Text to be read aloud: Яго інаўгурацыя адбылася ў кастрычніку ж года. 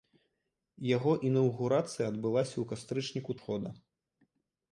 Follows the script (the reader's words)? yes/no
yes